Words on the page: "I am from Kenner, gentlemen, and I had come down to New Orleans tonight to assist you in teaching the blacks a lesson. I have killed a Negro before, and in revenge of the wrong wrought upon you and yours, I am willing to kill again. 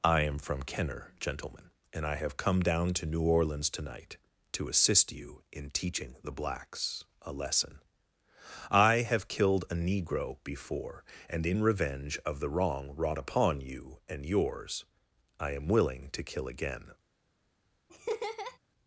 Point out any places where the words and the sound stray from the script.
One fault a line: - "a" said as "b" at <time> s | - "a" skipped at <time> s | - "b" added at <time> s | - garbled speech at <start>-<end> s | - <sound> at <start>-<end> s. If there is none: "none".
- "had" said as "have" at 2.1 s
- laugh at 17.9-18.6 s